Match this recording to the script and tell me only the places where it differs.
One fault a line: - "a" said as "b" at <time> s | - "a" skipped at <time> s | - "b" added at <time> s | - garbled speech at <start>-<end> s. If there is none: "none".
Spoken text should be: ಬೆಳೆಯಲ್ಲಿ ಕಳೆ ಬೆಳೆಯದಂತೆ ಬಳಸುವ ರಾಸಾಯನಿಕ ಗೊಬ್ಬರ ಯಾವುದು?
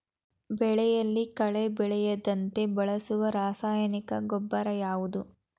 none